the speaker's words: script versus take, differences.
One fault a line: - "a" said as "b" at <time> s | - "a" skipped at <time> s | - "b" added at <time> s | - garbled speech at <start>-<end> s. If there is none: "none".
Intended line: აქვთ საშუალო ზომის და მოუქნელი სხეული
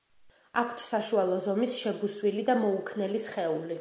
- "შებუსვილი" added at 1.8 s